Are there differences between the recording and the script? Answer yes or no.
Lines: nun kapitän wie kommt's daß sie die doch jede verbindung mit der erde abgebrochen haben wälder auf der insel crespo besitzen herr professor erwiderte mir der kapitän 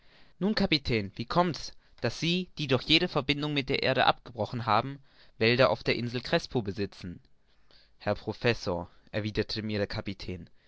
no